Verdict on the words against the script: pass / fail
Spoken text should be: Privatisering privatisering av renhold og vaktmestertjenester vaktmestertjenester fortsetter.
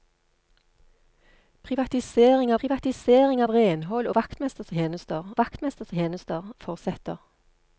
pass